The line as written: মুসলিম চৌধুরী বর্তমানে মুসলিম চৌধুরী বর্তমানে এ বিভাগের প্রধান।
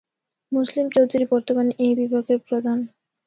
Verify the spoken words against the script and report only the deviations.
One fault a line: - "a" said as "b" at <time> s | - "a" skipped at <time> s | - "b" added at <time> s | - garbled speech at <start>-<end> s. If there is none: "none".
- "মুসলিম চৌধুরী বর্তমানে" skipped at 1.7 s